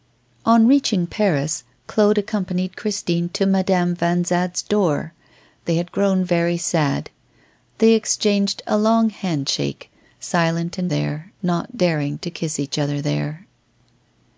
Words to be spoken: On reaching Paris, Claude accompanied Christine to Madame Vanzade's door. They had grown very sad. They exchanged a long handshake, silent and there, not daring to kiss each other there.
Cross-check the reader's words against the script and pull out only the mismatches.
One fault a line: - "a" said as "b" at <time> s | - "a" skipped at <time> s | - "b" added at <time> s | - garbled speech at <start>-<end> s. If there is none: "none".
none